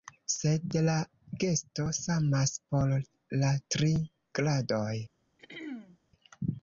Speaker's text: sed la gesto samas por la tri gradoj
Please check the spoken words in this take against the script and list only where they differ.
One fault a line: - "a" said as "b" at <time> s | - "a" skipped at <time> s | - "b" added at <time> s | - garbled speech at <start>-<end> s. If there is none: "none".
none